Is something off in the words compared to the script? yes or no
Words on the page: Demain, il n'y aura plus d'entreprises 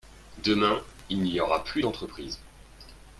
no